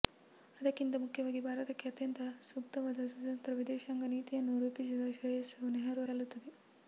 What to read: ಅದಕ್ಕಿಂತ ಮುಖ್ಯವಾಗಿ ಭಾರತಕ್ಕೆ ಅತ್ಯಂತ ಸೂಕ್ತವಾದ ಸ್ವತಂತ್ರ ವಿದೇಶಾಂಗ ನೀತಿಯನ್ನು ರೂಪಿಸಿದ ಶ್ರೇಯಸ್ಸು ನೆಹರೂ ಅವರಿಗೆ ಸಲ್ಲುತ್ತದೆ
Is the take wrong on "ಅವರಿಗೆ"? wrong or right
wrong